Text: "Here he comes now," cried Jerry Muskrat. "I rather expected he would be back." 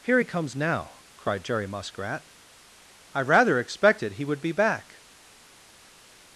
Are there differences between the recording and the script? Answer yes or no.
no